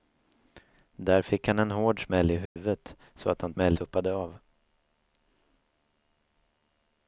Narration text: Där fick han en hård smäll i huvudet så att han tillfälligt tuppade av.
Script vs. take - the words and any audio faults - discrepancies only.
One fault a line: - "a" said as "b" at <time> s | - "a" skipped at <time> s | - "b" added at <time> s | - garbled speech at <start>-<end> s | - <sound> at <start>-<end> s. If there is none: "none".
- dropout at 2.5-2.6 s
- "tillfälligt" said as "smäll" at 3.5 s